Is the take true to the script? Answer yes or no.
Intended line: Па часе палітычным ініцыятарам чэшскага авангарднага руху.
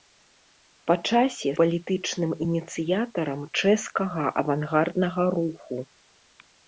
yes